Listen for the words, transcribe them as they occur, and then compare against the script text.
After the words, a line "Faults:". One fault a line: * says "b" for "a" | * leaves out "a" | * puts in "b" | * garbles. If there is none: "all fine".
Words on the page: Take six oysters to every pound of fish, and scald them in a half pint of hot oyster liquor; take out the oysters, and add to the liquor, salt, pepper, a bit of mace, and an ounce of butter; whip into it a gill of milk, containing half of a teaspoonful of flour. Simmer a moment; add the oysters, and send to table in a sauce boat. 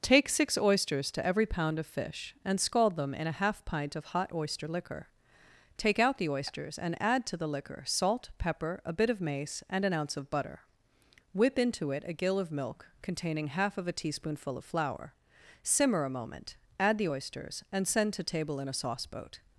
Take six oysters to every pound of fish, and scald them in a half pint of hot oyster liquor; take out the oysters, and add to the liquor, salt, pepper, a bit of mace, and an ounce of butter; whip into it a gill of milk, containing half of a teaspoonful of flour. Simmer a moment; add the oysters, and send to table in a sauce boat.
Faults:
all fine